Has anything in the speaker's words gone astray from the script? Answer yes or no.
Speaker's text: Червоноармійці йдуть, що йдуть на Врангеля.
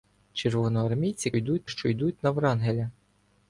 no